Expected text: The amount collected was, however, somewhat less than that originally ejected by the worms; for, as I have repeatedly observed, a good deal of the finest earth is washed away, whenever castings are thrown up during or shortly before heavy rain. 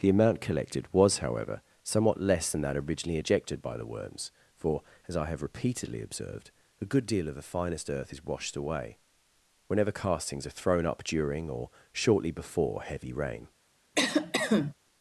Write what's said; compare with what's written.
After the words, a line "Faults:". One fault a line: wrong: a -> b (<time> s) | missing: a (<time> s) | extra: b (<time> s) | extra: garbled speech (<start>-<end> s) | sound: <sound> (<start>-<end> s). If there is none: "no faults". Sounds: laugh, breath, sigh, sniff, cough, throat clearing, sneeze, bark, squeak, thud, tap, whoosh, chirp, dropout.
The amount collected was, however, somewhat less than that originally ejected by the worms; for, as I have repeatedly observed, a good deal of the finest earth is washed away, whenever castings are thrown up during or shortly before heavy rain.
Faults:
sound: cough (13.9-14.7 s)